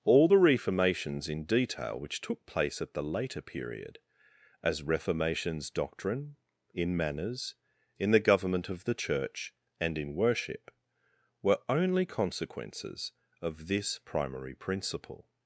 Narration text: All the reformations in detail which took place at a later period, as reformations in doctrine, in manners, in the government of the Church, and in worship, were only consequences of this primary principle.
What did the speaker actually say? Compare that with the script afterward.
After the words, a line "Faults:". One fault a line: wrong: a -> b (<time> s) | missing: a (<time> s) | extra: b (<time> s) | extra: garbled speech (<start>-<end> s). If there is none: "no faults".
All the reformations in detail which took place at the later period, as reformations doctrine, in manners, in the government of the Church, and in worship, were only consequences of this primary principle.
Faults:
wrong: a -> the (2.9 s)
missing: in (5.7 s)